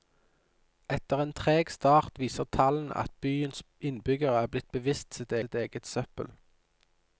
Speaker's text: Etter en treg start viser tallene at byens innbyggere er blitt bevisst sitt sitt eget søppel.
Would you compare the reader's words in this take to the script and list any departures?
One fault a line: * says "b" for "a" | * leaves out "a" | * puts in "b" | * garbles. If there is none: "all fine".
all fine